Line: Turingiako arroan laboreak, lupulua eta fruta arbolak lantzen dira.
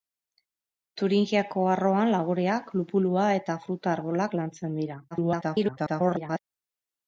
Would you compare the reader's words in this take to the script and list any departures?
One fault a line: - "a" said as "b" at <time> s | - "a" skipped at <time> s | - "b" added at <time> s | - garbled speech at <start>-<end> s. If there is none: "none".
- garbled speech at 5.1-6.4 s